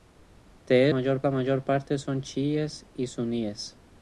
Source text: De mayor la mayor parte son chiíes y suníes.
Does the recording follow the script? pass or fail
pass